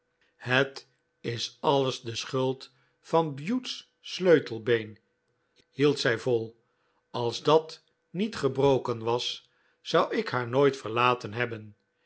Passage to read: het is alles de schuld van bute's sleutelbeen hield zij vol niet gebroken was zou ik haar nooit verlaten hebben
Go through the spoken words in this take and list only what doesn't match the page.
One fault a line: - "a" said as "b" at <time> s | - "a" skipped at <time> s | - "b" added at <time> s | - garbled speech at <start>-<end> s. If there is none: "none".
- "als dat" added at 7.1 s